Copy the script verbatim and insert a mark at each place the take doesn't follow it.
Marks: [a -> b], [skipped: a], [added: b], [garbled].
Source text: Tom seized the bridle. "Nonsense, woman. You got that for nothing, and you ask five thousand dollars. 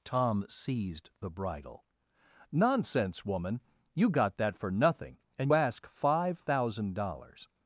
Tom seized the bridle. "Nonsense, woman. You got that for nothing, and [skipped: you] ask five thousand dollars.